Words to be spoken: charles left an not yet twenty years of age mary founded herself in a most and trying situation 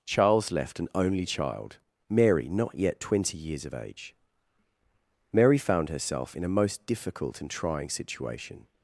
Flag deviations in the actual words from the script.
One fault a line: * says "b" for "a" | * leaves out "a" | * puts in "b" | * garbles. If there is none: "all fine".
* puts in "only child mary"
* says "found" for "founded"
* puts in "difficult"